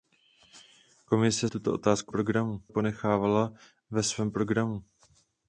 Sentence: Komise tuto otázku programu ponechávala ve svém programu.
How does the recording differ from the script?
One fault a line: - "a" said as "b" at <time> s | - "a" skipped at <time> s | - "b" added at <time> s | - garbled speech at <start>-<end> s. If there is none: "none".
none